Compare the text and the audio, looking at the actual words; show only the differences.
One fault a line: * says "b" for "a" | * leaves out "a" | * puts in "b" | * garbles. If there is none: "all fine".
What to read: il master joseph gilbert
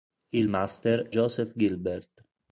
all fine